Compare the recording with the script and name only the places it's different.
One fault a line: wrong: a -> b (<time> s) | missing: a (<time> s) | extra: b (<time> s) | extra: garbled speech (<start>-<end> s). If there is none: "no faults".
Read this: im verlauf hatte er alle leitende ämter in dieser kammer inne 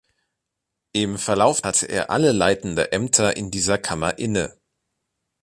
no faults